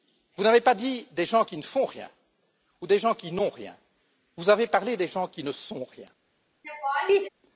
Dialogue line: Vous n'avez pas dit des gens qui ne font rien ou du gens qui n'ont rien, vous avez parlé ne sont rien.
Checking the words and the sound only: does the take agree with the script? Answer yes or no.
no